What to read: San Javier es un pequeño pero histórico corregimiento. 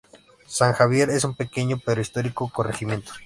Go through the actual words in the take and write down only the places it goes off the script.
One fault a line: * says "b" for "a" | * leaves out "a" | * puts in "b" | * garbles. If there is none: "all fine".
all fine